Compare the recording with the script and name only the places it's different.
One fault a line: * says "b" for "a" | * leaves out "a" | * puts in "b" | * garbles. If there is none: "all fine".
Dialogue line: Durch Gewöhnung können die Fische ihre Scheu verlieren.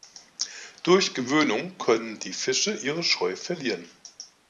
all fine